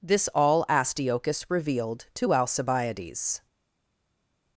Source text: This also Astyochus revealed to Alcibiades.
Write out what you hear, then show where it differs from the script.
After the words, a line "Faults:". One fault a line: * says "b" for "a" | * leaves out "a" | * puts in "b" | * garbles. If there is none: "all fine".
This all Astyochus revealed to Alcibiades.
Faults:
* says "all" for "also"